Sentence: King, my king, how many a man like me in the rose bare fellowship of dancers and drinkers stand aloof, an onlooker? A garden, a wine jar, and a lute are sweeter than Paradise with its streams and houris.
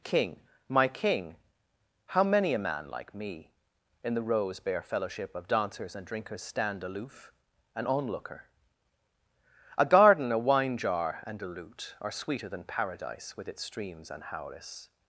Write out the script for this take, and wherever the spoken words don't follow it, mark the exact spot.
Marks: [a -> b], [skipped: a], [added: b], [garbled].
King, my king, how many a man like me in the rose bare fellowship of dancers and drinkers stand aloof, an onlooker? A garden, a wine jar, and a lute are sweeter than Paradise with its streams and houris.